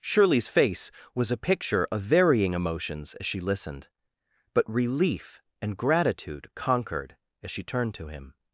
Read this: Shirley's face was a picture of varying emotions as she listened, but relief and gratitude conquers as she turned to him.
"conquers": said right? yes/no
no